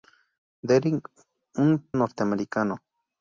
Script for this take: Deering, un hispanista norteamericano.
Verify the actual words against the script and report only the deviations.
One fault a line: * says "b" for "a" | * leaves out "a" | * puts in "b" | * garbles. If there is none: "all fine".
* leaves out "hispanista"